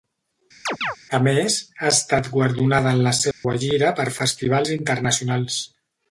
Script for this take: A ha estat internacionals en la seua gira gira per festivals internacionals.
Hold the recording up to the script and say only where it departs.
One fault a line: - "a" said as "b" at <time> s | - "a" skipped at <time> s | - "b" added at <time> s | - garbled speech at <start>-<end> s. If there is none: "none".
- "més" added at 1.3 s
- "internacionals" said as "guardonada" at 2.3 s
- "gira" skipped at 3.9 s